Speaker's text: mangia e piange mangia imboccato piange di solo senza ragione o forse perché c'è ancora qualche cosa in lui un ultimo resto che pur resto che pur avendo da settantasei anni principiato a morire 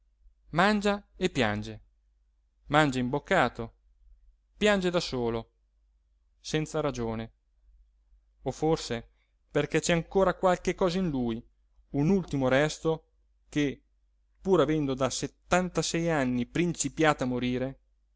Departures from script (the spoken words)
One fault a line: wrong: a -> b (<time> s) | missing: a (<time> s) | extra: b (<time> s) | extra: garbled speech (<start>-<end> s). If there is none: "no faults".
wrong: di -> da (4.9 s)
missing: resto che pur (14.6 s)